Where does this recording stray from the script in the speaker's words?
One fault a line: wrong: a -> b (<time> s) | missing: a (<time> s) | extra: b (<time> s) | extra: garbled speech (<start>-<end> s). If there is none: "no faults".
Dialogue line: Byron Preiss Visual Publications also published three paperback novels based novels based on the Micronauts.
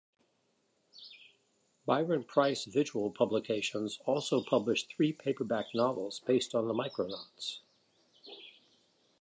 missing: novels based (6.5 s)